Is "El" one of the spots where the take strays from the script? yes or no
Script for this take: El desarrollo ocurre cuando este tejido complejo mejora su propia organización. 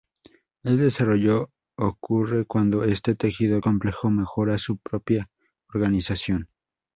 no